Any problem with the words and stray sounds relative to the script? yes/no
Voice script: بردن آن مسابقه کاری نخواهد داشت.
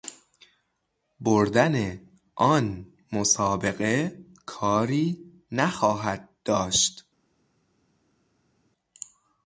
no